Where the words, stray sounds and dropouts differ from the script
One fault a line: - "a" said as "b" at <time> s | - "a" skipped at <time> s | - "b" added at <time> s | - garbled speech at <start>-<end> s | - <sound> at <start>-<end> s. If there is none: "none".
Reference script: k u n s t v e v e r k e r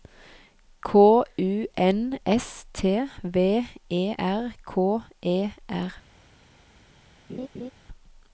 - "v e" skipped at 4.1 s
- laugh at 7.3-7.7 s